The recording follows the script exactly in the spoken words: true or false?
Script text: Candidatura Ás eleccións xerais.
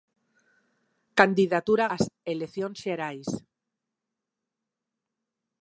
true